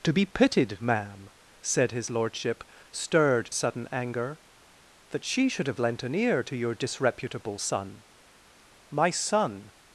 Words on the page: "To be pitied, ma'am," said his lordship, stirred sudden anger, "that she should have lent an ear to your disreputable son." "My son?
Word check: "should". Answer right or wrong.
right